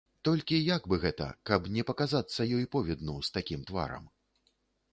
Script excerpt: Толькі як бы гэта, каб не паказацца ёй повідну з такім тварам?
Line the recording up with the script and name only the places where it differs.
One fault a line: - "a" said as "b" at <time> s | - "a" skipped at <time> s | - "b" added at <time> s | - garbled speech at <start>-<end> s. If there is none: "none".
none